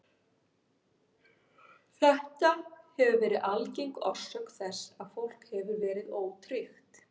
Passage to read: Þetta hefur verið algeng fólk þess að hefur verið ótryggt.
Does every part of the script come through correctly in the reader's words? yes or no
no